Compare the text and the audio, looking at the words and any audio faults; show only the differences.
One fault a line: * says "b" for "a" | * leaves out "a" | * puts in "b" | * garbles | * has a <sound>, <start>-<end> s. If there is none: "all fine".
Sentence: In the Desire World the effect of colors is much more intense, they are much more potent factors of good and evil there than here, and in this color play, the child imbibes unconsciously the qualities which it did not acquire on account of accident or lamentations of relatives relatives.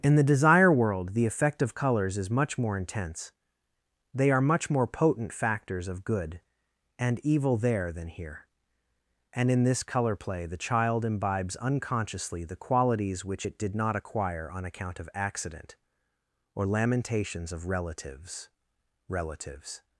all fine